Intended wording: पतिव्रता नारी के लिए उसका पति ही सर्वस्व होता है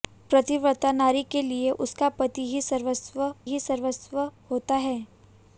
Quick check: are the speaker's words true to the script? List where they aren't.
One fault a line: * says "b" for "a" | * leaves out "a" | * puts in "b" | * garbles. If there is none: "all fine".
* puts in "ही सर्वस्व"